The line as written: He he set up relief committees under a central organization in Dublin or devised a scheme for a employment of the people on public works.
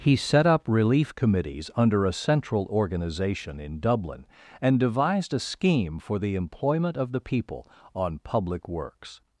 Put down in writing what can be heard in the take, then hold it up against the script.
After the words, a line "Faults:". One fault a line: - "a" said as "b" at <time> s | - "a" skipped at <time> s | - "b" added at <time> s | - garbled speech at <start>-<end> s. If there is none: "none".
He set up relief committees under a central organization in Dublin and devised a scheme for the employment of the people on public works.
Faults:
- "he" skipped at 0.1 s
- "or" said as "and" at 4.6 s
- "a" said as "the" at 6.2 s